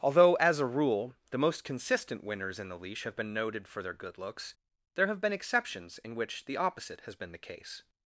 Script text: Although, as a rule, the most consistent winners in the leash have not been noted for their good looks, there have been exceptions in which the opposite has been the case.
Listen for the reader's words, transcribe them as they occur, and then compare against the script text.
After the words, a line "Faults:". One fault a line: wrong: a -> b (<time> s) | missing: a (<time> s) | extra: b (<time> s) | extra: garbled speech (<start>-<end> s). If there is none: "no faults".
Although, as a rule, the most consistent winners in the leash have been noted for their good looks, there have been exceptions in which the opposite has been the case.
Faults:
missing: not (3.1 s)